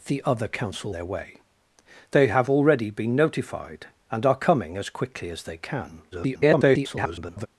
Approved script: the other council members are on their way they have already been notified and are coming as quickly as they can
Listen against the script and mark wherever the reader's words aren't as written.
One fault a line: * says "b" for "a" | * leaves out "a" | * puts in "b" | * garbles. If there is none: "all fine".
* leaves out "members are on"
* garbles